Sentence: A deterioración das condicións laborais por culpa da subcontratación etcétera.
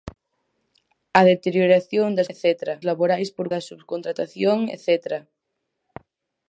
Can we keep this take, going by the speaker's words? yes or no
no